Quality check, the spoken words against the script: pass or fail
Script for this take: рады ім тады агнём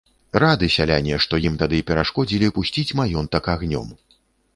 fail